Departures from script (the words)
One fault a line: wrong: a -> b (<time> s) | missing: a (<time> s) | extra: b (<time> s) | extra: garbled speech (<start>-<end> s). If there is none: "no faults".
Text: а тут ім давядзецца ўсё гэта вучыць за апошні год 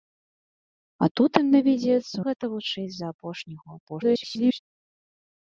missing: ўсё (2.2 s)
extra: garbled speech (3.9-4.6 s)